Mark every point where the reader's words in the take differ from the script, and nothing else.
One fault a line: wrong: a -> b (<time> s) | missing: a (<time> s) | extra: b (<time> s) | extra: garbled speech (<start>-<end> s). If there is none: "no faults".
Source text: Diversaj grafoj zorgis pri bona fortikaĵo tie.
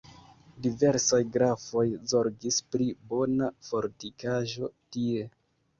no faults